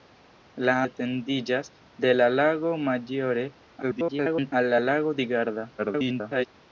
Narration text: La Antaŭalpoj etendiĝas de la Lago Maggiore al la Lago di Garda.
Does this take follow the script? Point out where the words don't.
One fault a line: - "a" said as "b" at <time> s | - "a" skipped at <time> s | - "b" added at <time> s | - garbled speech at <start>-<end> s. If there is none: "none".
- "Antaŭalpoj" skipped at 0.7 s
- garbled speech at 3.8-4.5 s
- garbled speech at 5.8-6.5 s